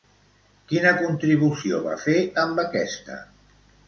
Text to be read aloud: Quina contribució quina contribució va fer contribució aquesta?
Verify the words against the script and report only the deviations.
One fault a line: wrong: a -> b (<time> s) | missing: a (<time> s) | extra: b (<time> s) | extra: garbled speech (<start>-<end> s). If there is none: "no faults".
missing: quina contribució (1.8 s)
wrong: contribució -> amb (2.5 s)